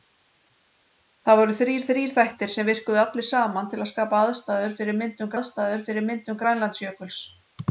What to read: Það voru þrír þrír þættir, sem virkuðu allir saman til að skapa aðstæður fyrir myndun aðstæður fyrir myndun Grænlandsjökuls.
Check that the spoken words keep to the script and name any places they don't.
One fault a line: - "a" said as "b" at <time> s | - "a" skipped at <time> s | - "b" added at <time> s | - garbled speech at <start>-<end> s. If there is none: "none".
none